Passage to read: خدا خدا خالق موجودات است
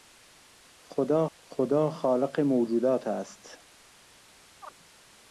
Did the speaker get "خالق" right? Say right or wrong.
right